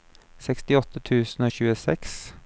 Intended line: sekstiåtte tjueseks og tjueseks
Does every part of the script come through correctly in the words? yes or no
no